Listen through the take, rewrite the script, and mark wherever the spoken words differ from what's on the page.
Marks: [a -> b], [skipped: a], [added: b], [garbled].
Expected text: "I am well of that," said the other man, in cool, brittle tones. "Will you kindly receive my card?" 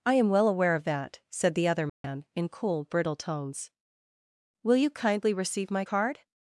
"I am well [added: aware] of that," said the other man, in cool, brittle tones. "Will you kindly receive my card?"